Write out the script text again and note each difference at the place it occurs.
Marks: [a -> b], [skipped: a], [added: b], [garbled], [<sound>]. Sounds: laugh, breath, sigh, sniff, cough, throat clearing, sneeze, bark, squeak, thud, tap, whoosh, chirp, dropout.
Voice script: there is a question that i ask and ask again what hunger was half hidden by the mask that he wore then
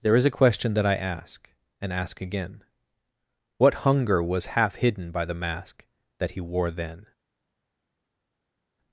there is a question that i ask and ask again what hunger was half hidden by the mask that he wore then